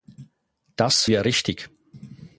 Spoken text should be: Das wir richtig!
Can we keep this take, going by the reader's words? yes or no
yes